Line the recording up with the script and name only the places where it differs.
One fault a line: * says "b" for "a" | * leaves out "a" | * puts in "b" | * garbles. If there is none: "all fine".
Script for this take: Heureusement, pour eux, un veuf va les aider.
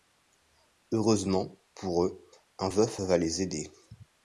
all fine